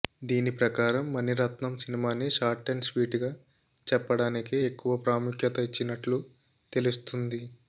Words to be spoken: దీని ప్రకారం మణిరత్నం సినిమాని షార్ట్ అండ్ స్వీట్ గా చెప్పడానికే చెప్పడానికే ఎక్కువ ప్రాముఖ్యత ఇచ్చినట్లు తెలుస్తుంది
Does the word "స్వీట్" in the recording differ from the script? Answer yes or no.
no